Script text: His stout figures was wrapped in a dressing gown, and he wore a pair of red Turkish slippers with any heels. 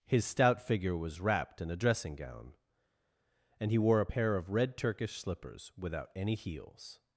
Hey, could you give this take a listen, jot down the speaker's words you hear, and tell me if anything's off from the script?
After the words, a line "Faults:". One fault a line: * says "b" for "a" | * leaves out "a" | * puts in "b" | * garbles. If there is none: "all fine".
His stout figure was wrapped in a dressing gown, and he wore a pair of red Turkish slippers without any heels.
Faults:
* says "figure" for "figures"
* says "without" for "with"